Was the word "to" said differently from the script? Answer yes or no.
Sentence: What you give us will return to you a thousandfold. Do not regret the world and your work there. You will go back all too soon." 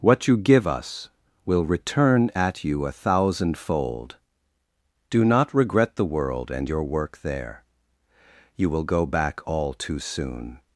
yes